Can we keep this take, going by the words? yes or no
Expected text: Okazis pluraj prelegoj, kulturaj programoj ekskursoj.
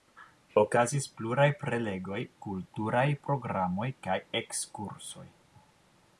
no